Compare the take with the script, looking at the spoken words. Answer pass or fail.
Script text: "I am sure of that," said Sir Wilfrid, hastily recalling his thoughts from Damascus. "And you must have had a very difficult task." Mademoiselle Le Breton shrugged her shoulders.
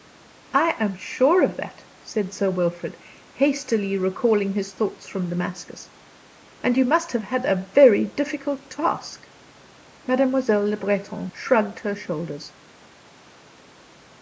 pass